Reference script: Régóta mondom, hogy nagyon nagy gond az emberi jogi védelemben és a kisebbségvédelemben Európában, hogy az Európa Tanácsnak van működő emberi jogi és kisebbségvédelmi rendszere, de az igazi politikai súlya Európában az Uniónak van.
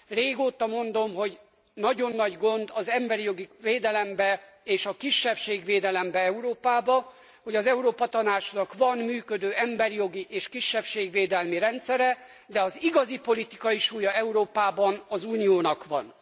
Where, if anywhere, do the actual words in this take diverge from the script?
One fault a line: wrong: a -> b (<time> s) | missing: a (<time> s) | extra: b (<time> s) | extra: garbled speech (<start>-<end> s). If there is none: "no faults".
no faults